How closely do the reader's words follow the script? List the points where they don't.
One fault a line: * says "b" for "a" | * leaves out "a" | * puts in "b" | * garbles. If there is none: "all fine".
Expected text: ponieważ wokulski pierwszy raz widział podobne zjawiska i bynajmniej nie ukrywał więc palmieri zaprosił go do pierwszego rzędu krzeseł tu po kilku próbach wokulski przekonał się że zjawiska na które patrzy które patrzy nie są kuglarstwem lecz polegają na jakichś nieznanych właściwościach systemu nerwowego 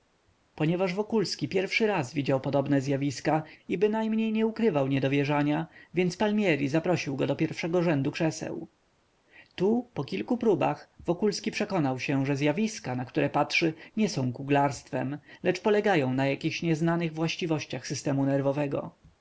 * puts in "niedowierzania"
* leaves out "które patrzy"